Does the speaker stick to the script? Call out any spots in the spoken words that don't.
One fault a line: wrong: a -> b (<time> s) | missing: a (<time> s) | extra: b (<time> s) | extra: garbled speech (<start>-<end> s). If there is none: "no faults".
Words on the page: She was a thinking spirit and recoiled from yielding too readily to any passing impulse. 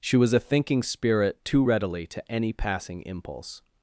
missing: and recoiled from yielding (1.4 s)